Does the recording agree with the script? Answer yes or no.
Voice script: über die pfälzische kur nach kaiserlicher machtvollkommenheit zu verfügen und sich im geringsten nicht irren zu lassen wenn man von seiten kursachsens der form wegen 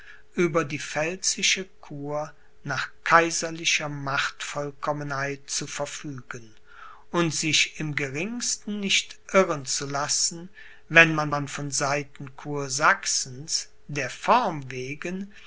no